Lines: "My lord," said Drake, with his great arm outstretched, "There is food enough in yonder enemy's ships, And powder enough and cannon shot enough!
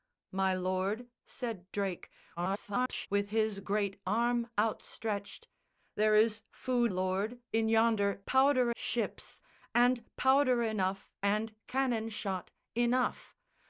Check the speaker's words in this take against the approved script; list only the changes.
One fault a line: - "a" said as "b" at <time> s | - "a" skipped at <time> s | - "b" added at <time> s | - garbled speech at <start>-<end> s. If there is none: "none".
- garbled speech at 2.4-3.1 s
- "enough" said as "lord" at 6.9 s
- "enemy's" said as "powder" at 8.3 s